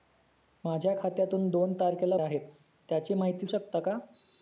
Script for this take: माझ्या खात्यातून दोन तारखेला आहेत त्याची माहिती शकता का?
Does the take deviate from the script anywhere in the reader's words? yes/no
no